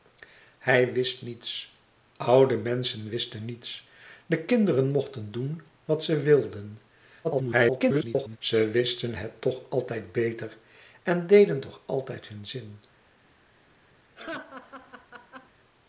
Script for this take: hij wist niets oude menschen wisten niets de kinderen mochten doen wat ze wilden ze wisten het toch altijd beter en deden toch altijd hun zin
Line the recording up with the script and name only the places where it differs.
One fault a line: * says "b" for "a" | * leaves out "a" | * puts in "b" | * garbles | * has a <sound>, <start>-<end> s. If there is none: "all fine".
* garbles
* has a laugh, 14.1-15.5 s